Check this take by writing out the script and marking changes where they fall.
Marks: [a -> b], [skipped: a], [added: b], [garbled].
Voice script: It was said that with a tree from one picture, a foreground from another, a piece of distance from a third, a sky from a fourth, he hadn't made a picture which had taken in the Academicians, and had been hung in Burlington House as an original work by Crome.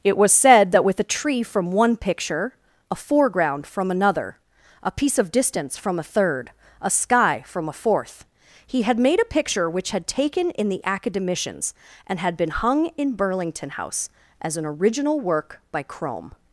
It was said that with a tree from one picture, a foreground from another, a piece of distance from a third, a sky from a fourth, he [hadn't -> had] made a picture which had taken in the Academicians, and had been hung in Burlington House as an original work by Crome.